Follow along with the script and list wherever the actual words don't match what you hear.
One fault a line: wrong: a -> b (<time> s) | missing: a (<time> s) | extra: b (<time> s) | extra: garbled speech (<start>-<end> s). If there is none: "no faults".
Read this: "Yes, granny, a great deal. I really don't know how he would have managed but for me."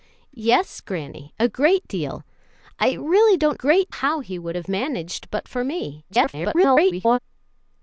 wrong: know -> great (3.5 s)
extra: garbled speech (6.1-7.2 s)